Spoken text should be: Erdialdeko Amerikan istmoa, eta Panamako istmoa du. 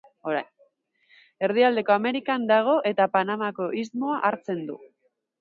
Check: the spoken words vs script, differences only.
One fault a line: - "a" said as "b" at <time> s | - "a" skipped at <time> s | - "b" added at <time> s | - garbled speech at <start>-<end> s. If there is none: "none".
- "istmoa" said as "dago" at 2.5 s
- "hartzen" added at 4.3 s